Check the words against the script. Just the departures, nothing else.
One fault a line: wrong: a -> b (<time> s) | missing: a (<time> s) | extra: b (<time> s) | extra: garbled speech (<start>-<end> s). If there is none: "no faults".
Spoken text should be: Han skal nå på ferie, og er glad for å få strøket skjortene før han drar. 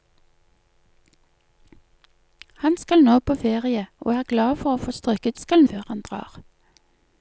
wrong: skjortene -> skal (5.4 s)